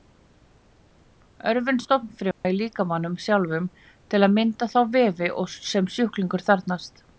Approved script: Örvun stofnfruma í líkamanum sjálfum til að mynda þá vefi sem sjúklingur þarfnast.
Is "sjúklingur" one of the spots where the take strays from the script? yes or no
no